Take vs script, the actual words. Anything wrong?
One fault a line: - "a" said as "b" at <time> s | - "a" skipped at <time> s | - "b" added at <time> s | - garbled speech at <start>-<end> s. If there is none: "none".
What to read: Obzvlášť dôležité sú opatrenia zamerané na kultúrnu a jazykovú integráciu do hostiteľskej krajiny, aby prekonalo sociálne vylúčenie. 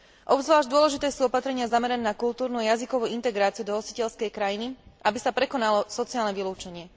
- "sa" added at 5.2 s